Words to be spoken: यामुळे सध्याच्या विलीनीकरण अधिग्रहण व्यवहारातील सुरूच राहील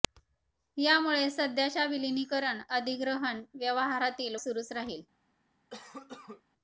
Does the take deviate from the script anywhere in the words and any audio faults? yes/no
yes